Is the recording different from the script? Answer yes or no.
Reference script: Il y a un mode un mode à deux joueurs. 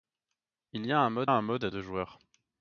no